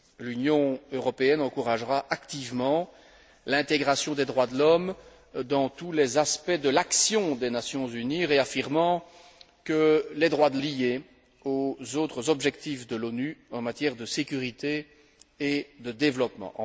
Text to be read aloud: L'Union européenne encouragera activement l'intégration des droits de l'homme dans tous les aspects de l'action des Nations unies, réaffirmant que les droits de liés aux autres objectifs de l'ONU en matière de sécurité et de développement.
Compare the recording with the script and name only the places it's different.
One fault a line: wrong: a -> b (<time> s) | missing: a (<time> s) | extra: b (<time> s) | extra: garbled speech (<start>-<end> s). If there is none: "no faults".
no faults